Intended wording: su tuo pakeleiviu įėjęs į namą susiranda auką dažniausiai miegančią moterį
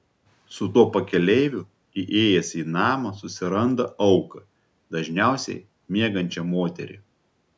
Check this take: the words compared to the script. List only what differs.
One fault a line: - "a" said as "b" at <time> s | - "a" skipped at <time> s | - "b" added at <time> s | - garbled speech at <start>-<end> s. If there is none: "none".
none